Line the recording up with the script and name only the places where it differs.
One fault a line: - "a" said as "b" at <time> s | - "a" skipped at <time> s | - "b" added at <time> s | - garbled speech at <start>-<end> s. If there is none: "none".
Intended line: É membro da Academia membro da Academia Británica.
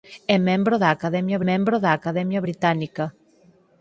none